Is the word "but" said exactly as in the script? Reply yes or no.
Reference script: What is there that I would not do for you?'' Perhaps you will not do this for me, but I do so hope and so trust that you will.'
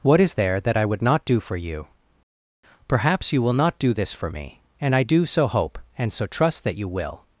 no